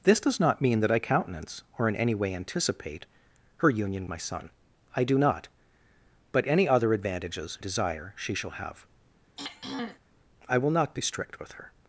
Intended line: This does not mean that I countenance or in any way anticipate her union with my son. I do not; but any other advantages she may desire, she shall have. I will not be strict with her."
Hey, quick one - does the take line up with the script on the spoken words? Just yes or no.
no